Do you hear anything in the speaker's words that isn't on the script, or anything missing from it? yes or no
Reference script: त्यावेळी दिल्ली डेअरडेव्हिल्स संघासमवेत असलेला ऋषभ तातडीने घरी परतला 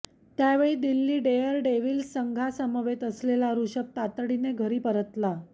no